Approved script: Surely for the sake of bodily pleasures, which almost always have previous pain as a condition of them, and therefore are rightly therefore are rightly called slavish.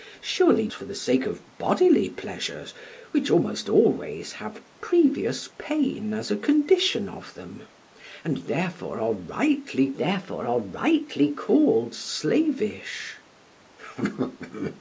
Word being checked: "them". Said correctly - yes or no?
yes